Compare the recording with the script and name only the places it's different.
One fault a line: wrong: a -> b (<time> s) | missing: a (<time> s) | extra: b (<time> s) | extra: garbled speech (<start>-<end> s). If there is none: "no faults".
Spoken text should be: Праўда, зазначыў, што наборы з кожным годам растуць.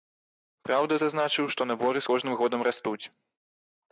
no faults